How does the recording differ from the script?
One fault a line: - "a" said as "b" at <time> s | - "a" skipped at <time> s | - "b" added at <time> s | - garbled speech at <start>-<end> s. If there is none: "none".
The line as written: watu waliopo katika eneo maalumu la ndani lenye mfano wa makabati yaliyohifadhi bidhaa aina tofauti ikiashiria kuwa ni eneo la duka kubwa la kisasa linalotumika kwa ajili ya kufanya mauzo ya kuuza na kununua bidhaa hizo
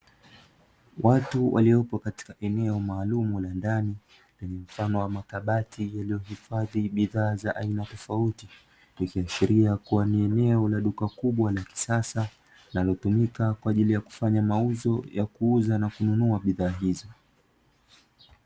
- "za" added at 7.3 s